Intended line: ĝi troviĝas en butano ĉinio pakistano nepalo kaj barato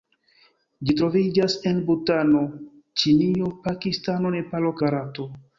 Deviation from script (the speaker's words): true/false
true